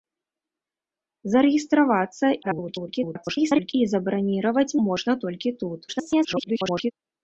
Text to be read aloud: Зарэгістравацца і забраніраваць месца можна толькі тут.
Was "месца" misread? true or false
true